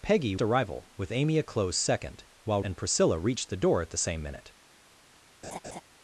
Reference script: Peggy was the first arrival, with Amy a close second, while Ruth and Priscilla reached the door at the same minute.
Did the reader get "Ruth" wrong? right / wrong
wrong